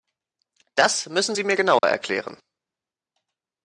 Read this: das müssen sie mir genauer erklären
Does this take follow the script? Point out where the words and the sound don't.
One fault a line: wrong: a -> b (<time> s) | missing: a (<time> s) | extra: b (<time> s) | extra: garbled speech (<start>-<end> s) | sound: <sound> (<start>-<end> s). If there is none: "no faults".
sound: dropout (1.8-1.8 s)